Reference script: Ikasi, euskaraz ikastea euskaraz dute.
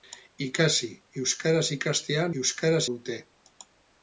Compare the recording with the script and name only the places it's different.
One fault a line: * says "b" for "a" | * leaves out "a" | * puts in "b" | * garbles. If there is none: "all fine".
all fine